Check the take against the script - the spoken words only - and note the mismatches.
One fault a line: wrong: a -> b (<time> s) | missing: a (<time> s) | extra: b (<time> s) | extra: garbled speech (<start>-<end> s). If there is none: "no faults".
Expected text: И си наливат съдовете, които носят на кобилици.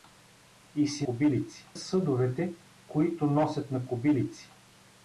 wrong: наливат -> кобилици (1.0 s)